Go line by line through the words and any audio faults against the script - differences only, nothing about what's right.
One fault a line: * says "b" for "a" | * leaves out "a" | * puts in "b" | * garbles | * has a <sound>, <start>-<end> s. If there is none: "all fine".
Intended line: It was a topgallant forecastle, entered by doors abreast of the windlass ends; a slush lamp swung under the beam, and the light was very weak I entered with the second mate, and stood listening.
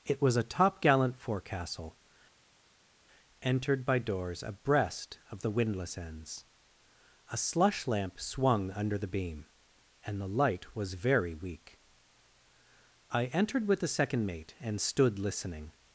all fine